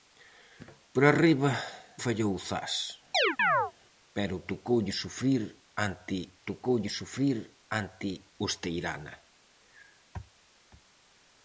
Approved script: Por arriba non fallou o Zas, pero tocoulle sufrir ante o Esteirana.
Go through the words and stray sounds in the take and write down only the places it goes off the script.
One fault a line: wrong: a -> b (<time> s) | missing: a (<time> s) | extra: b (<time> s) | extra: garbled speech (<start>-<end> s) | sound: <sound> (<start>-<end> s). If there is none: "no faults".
missing: non (1.5 s)
sound: chirp (3.1-3.7 s)
extra: tocoulle sufrir ante (6.5 s)